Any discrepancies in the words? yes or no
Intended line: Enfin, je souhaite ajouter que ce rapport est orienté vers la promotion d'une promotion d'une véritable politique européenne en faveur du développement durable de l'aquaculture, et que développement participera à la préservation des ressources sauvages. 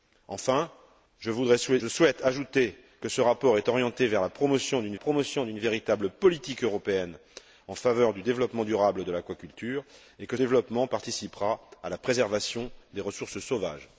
no